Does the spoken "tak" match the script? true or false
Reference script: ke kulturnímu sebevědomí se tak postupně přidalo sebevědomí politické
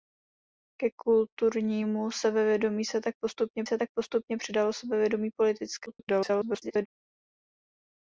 true